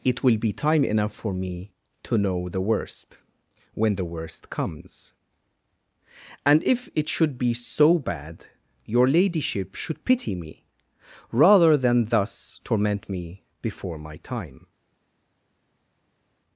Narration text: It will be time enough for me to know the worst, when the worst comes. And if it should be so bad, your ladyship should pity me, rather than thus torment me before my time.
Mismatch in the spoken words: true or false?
false